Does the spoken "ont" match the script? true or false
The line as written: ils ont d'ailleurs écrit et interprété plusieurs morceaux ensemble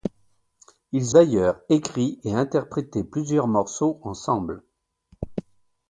false